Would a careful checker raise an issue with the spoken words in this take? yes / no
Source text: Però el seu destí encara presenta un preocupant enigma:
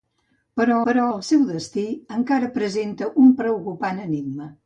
yes